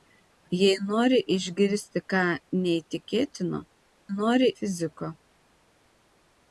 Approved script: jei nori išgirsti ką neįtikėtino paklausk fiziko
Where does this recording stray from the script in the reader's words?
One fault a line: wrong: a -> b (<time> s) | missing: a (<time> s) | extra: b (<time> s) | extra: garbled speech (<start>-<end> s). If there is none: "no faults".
wrong: paklausk -> nori (4.2 s)